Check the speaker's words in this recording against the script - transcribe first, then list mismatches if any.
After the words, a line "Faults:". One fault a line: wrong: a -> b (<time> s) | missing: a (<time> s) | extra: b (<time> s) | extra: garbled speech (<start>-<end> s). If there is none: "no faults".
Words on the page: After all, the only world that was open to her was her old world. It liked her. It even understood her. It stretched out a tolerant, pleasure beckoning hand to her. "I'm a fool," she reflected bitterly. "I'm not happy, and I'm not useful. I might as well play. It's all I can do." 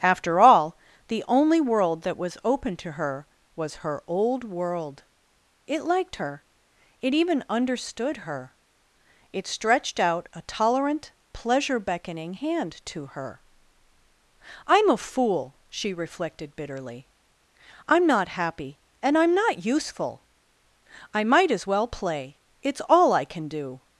After all, the only world that was open to her was her old world. It liked her. It even understood her. It stretched out a tolerant, pleasure beckoning hand to her. "I'm a fool," she reflected bitterly. "I'm not happy, and I'm not useful. I might as well play. It's all I can do."
Faults:
no faults